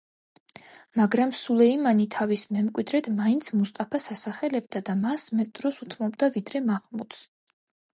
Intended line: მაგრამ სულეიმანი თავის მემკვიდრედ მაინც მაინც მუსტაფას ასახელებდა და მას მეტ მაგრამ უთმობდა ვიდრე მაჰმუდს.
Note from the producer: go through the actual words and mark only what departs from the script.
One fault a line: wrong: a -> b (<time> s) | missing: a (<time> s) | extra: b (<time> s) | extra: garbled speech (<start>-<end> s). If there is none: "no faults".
missing: მაინც (3.5 s)
wrong: მაგრამ -> დროს (5.6 s)